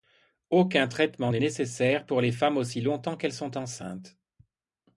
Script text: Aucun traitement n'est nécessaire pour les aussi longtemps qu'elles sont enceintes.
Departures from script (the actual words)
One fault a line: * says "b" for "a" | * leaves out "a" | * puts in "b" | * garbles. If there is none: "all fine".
* puts in "femmes"